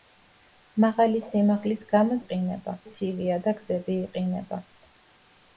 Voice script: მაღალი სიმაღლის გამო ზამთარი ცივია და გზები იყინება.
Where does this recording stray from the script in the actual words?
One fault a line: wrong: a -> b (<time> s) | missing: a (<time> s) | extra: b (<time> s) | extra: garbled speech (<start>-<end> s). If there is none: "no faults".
wrong: ზამთარი -> იყინება (2.2 s)